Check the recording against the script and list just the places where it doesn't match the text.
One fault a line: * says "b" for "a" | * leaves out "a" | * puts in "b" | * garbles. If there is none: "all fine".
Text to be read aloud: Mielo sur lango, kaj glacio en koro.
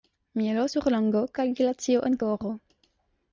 all fine